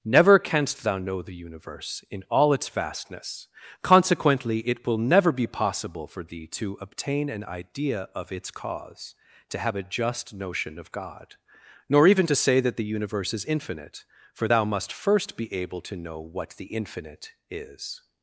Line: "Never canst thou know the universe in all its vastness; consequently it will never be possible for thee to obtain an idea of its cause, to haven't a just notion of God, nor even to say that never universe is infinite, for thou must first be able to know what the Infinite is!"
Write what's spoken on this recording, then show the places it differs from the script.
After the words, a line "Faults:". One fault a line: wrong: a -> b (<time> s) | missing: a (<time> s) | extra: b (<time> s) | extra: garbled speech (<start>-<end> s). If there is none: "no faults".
"Never canst thou know the universe in all its vastness; consequently it will never be possible for thee to obtain an idea of its cause, to have a just notion of God, nor even to say that the universe is infinite, for thou must first be able to know what the Infinite is!"
Faults:
wrong: haven't -> have (9.6 s)
wrong: never -> the (12.8 s)